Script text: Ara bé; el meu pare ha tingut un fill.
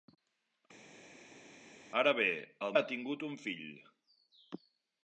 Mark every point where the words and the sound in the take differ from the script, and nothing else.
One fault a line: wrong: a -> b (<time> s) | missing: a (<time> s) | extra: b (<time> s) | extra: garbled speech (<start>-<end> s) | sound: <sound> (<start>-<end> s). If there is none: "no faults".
missing: meu pare (2.8 s)